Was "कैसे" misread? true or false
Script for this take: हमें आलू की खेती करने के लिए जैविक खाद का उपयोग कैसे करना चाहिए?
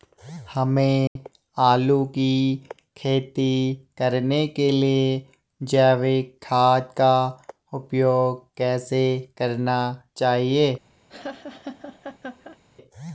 false